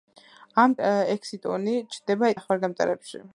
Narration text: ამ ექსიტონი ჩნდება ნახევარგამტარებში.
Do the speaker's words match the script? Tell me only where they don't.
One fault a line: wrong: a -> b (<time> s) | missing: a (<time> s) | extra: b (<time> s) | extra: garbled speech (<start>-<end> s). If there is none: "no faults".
no faults